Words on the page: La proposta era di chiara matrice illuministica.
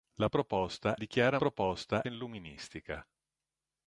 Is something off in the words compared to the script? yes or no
yes